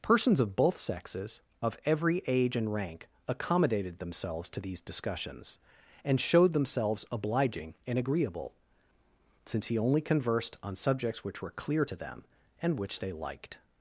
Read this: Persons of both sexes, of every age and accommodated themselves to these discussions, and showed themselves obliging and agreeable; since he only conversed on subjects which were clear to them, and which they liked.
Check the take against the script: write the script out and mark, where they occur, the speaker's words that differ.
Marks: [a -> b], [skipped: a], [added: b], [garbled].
Persons of both sexes, of every age and [added: rank] accommodated themselves to these discussions, and showed themselves obliging and agreeable; since he only conversed on subjects which were clear to them, and which they liked.